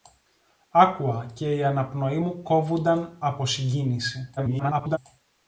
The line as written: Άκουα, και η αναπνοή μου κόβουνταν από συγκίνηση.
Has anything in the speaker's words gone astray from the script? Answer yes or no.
yes